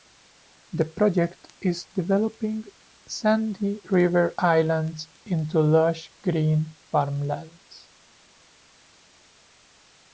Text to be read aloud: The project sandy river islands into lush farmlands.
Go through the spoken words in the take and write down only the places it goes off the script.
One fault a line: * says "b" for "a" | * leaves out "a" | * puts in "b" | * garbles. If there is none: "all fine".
* puts in "is developing"
* puts in "green"